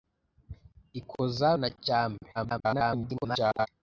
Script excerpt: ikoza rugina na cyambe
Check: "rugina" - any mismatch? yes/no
yes